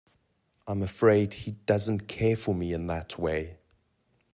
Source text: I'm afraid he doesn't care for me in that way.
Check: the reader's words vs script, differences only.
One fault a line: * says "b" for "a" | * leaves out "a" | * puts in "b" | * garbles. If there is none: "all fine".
all fine